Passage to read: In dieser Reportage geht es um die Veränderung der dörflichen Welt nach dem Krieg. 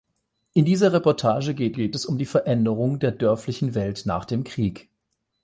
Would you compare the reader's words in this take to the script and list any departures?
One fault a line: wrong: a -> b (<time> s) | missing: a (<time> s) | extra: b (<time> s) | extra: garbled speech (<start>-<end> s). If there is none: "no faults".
extra: geht (1.7 s)